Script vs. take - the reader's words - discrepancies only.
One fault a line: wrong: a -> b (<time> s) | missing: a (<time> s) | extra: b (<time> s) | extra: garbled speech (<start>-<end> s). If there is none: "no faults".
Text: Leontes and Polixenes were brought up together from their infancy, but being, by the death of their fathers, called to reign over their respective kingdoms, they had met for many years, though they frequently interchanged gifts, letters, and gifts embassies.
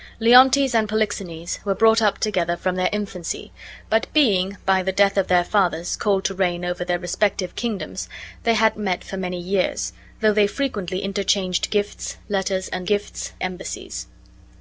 no faults